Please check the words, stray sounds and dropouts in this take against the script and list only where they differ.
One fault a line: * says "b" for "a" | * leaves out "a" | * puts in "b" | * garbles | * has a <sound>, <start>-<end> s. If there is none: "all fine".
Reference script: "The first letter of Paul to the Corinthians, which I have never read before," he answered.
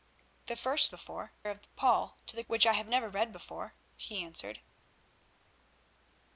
* says "before" for "letter"
* leaves out "Corinthians"